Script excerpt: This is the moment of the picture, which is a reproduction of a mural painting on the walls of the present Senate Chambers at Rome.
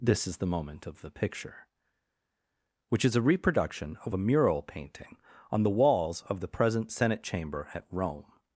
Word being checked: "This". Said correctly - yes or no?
yes